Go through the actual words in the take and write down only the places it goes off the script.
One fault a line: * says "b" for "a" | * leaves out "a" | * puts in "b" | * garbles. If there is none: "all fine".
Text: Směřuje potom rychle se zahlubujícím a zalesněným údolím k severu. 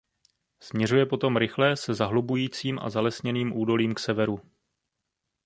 all fine